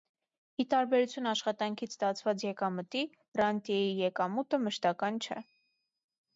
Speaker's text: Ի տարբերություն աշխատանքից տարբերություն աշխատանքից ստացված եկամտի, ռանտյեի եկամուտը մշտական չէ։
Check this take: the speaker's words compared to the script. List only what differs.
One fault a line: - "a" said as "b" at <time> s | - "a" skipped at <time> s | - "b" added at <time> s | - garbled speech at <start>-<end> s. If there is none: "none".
- "տարբերություն աշխատանքից" skipped at 1.9 s